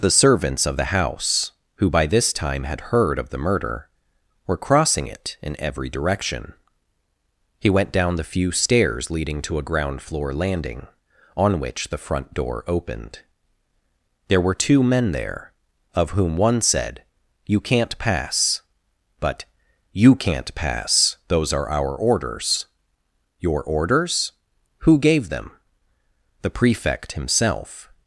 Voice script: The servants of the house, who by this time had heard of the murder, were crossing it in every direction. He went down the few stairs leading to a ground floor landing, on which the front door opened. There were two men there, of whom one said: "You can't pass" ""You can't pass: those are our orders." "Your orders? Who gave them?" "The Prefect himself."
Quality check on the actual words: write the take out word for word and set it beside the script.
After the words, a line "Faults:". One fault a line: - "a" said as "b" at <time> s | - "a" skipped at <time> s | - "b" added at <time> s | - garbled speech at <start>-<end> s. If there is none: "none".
The servants of the house, who by this time had heard of the murder, were crossing it in every direction. He went down the few stairs leading to a ground floor landing, on which the front door opened. There were two men there, of whom one said: "You can't pass." "But" "You can't pass: those are our orders." "Your orders? Who gave them?" "The Prefect himself."
Faults:
- "But" added at 19.2 s